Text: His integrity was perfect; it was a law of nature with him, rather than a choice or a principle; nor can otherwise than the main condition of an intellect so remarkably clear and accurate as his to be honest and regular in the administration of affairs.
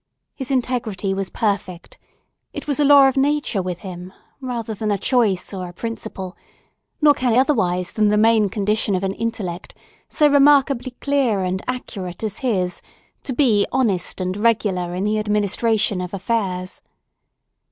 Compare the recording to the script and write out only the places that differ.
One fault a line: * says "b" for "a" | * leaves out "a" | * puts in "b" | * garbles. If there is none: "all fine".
all fine